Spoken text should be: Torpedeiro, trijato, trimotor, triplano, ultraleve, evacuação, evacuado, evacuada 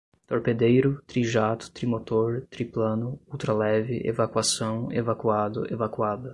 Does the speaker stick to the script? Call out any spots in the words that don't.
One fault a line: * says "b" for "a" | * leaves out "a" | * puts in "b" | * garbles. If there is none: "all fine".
all fine